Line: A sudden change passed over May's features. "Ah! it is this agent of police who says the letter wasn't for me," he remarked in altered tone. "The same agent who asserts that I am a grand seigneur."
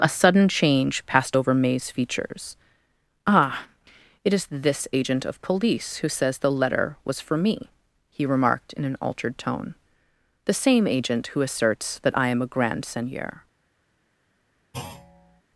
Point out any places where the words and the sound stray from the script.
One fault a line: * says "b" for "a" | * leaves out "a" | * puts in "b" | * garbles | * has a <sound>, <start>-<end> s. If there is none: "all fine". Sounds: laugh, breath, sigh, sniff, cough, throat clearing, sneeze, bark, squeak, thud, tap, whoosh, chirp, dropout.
* says "was" for "wasn't"
* puts in "an"
* has a thud, 14.7-15.4 s